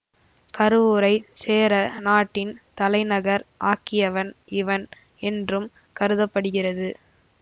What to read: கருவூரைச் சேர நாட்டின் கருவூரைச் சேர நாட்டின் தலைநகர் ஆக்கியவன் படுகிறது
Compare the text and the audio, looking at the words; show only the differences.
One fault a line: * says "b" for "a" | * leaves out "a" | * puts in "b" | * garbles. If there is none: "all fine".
* says "தலைநகர் ஆக்கியவன் இவன் என்றும் கருத" for "கருவூரைச் சேர நாட்டின் தலைநகர் ஆக்கியவன்"